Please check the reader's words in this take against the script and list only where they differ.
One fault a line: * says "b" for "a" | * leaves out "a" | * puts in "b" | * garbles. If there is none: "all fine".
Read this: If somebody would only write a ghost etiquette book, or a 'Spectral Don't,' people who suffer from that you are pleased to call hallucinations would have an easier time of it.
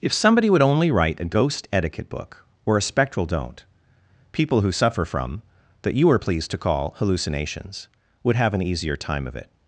all fine